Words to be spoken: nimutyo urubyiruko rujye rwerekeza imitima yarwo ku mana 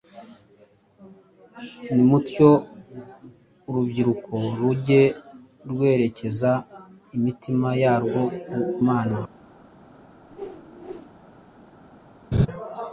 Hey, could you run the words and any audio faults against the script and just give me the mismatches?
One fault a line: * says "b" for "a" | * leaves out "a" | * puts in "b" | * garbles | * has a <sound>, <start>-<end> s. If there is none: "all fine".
* has a whoosh, 10.3-11.1 s
* has a laugh, 12.3-12.5 s